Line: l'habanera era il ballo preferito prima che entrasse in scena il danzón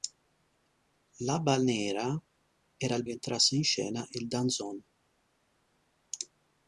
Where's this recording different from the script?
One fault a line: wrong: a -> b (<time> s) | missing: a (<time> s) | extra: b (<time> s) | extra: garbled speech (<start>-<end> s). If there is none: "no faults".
missing: ballo preferito prima (3.0 s)